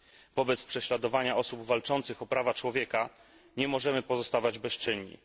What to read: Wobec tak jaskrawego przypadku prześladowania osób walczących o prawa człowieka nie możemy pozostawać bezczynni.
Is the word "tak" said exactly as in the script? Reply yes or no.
no